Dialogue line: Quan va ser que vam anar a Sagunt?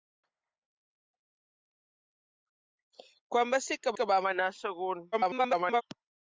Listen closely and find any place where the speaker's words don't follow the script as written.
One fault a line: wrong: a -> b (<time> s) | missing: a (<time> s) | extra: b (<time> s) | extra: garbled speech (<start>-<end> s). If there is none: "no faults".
extra: que (4.0 s)
extra: garbled speech (5.1-5.8 s)